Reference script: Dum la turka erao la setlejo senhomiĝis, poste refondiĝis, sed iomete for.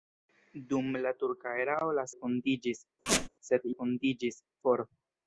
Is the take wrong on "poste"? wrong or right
wrong